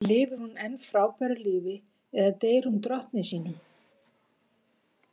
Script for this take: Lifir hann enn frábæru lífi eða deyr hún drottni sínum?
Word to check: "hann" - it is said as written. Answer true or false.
false